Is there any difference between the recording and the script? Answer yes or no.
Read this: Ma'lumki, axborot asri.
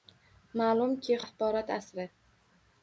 no